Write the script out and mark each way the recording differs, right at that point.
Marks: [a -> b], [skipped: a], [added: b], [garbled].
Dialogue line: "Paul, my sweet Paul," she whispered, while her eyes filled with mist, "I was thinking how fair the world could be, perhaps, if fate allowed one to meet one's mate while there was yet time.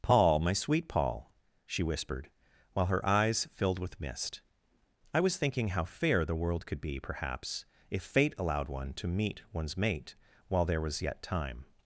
"Paul, my sweet Paul," she whispered, while her eyes filled with mist, "I was thinking how fair the world could be, perhaps, if fate allowed one to meet one's mate while there was yet time.